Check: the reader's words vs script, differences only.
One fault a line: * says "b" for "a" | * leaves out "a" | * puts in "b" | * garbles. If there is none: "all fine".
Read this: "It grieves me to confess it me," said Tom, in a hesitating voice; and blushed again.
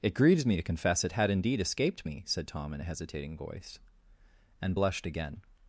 * puts in "had indeed escaped"